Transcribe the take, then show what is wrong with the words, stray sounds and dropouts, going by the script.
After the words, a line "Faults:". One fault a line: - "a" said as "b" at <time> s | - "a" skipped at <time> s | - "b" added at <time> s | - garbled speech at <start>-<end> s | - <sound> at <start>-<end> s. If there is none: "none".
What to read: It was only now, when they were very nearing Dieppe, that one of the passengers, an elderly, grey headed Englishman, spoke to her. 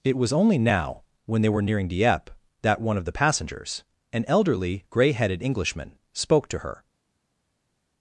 It was only now, when they were nearing Dieppe, that one of the passengers, an elderly, grey headed Englishman, spoke to her.
Faults:
- "very" skipped at 1.6 s